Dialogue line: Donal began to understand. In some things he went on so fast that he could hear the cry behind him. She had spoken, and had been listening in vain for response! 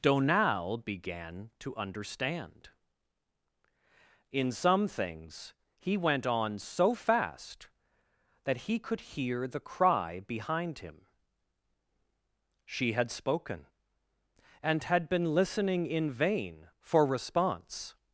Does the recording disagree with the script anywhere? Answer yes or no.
no